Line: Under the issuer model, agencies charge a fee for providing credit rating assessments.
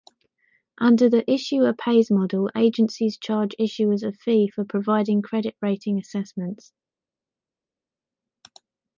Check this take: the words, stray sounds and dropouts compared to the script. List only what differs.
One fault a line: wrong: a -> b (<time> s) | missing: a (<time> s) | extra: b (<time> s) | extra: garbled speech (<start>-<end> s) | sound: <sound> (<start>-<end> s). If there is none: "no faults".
extra: pays (1.7 s)
extra: issuers (3.6 s)